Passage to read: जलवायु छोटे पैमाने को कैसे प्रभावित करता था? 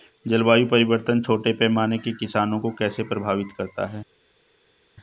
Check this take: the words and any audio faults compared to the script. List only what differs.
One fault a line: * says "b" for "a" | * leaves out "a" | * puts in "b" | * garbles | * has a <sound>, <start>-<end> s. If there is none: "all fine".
* puts in "परिवर्तन"
* puts in "के किसानों"
* says "है" for "था"